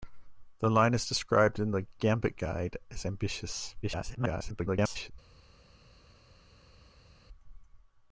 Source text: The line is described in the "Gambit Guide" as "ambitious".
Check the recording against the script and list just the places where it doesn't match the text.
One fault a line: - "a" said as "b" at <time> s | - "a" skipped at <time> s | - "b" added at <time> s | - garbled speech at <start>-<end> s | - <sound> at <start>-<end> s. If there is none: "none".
- garbled speech at 3.8-5.1 s